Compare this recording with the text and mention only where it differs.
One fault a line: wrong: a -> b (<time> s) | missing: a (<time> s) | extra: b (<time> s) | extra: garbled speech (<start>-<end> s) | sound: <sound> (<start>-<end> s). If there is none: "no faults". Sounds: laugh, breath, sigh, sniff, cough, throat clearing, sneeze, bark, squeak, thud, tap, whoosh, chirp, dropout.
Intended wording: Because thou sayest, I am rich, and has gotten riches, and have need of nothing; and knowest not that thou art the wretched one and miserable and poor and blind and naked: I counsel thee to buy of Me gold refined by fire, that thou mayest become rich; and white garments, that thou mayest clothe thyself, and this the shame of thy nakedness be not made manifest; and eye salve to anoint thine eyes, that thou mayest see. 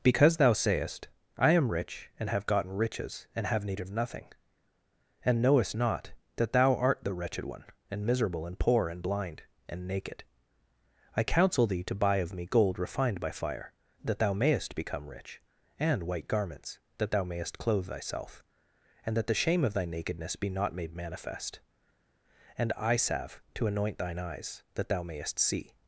wrong: has -> have (2.3 s)
wrong: this -> that (19.1 s)